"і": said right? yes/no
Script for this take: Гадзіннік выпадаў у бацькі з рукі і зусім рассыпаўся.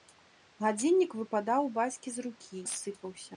no